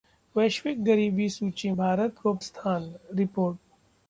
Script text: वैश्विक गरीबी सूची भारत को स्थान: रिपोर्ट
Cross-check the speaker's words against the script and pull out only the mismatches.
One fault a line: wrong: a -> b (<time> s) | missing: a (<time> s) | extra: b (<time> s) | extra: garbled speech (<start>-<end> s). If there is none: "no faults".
no faults